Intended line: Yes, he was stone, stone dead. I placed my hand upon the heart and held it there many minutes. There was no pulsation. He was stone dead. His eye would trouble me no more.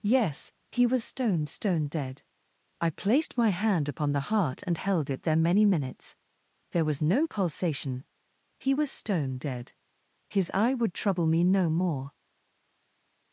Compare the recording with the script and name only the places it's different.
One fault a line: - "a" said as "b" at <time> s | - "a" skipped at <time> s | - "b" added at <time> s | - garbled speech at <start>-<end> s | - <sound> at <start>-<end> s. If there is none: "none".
none